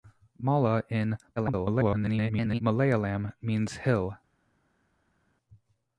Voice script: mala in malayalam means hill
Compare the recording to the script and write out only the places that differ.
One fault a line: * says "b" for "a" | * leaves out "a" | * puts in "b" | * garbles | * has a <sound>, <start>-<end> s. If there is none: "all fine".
* garbles